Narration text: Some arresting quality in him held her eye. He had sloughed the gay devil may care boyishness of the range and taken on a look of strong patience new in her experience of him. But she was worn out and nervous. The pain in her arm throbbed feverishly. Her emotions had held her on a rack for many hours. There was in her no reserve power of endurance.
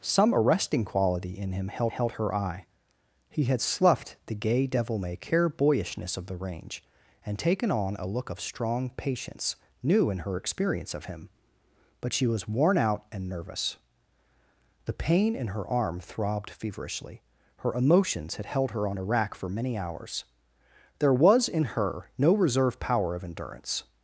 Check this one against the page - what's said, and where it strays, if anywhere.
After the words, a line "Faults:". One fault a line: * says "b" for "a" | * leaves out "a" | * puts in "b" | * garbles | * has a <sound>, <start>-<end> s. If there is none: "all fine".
Some arresting quality in him held held her eye. He had sloughed the gay devil may care boyishness of the range and taken on a look of strong patience new in her experience of him. But she was worn out and nervous. The pain in her arm throbbed feverishly. Her emotions had held her on a rack for many hours. There was in her no reserve power of endurance.
Faults:
* puts in "held"